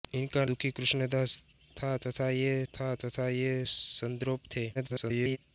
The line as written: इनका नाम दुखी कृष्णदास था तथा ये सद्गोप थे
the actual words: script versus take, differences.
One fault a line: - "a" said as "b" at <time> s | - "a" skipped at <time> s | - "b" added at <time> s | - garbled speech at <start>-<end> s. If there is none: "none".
- "नाम" skipped at 0.4 s
- "था तथा ये" added at 2.7 s
- garbled speech at 4.7-5.4 s